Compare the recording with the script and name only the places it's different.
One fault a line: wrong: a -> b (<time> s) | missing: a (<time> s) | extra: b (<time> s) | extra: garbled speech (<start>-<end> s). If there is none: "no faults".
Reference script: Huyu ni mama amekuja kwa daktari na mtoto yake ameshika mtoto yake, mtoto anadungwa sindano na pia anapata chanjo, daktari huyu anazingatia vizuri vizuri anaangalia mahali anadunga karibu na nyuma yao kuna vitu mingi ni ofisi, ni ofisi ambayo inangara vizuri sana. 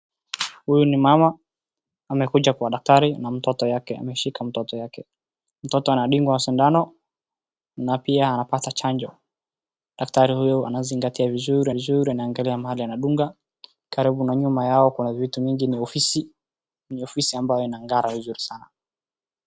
no faults